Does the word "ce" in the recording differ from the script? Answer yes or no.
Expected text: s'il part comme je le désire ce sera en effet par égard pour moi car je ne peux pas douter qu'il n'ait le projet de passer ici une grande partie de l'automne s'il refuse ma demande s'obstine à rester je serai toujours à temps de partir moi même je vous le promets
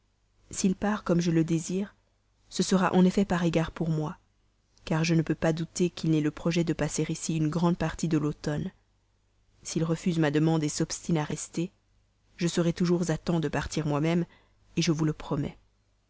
no